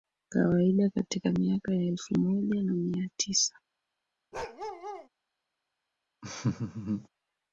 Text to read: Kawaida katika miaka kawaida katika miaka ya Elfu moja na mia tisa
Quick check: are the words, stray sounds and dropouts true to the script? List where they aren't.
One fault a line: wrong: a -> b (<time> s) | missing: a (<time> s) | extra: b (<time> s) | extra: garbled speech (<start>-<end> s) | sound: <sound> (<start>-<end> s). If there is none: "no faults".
missing: kawaida katika miaka (1.7 s)
sound: bark (4.3-5.1 s)
sound: laugh (6.2-7.1 s)